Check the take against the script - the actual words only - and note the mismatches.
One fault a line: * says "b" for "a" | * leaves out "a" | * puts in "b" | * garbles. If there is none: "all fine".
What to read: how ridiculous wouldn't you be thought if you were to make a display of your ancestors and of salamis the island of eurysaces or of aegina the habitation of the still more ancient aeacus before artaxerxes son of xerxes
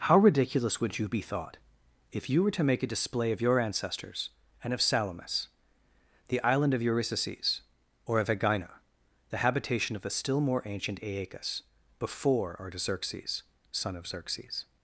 * says "would" for "wouldn't"